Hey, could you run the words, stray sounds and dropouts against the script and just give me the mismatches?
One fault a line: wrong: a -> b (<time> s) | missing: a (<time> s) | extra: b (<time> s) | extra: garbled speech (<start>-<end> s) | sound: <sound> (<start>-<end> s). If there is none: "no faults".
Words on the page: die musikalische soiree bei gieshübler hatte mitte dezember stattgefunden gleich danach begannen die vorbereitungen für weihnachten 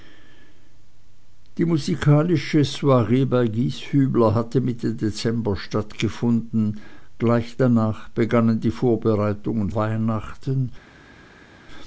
missing: für (9.7 s)